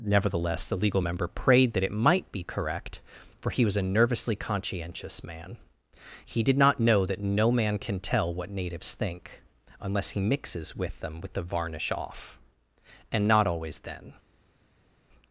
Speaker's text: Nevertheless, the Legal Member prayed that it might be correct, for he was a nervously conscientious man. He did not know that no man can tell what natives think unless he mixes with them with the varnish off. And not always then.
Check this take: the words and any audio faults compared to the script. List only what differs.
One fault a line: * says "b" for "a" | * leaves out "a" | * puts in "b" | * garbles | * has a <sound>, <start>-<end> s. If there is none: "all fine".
all fine